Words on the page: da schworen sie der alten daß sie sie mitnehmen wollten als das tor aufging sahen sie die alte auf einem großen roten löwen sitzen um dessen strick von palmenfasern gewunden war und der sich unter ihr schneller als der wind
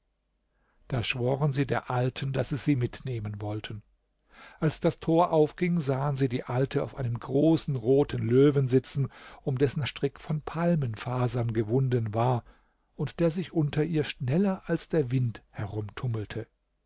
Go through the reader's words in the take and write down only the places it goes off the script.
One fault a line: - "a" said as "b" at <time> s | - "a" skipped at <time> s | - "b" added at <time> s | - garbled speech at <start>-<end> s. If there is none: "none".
none